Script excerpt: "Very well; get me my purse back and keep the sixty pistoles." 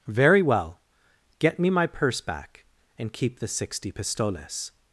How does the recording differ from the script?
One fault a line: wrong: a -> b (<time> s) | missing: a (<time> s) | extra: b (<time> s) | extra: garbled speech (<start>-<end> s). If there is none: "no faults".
no faults